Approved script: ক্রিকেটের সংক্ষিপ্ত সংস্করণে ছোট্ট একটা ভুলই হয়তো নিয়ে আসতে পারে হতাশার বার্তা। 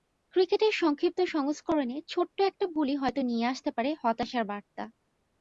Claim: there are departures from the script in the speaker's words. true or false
false